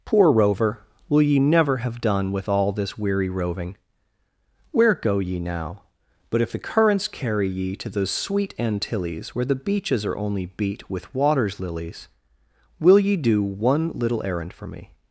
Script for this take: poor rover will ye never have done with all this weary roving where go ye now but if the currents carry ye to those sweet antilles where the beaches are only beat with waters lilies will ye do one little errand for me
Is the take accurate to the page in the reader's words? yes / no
yes